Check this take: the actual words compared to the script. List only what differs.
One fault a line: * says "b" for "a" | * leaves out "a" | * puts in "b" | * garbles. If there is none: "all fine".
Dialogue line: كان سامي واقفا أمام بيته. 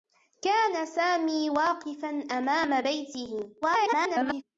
* garbles